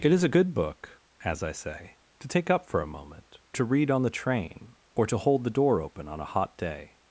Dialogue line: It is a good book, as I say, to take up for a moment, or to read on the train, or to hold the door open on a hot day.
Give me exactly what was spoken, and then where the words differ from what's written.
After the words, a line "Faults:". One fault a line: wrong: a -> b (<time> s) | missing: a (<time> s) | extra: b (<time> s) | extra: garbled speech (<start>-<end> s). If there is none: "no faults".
It is a good book, as I say, to take up for a moment, to read on the train, or to hold the door open on a hot day.
Faults:
missing: or (3.4 s)